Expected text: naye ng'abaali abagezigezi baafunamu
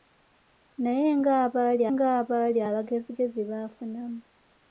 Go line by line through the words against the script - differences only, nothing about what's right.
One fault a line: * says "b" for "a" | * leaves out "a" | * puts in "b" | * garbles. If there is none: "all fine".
* puts in "ng'abaali"